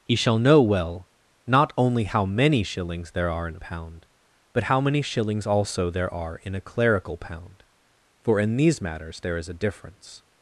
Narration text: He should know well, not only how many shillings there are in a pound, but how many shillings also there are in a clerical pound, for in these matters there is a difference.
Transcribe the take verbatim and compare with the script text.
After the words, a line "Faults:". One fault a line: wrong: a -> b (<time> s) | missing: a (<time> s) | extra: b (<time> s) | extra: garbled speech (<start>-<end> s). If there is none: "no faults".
He shall know well, not only how many shillings there are in a pound, but how many shillings also there are in a clerical pound, for in these matters there is a difference.
Faults:
wrong: should -> shall (0.1 s)